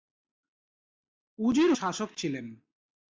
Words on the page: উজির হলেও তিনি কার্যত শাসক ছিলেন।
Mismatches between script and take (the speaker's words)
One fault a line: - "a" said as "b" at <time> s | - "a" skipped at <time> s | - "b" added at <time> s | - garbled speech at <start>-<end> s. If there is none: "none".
- "হলেও তিনি কার্যত" skipped at 1.7 s